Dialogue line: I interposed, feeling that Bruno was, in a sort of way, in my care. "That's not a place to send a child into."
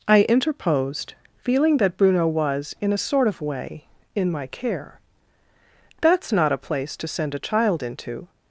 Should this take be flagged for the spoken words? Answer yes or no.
no